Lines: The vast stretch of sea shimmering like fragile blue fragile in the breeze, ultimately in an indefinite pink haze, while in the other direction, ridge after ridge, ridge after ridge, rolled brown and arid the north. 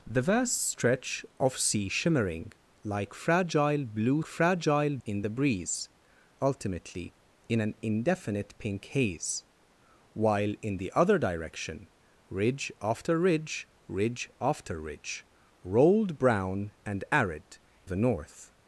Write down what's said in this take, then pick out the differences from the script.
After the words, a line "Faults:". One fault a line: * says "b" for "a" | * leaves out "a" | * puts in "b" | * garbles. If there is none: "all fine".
The vast stretch of sea shimmering like fragile blue fragile in the breeze, ultimately in an indefinite pink haze, while in the other direction, ridge after ridge, ridge after ridge, rolled brown and arid the north.
Faults:
all fine